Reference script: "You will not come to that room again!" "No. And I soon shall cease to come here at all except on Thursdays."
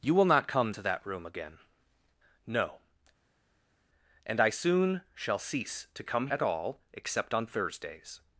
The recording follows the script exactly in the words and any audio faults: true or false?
false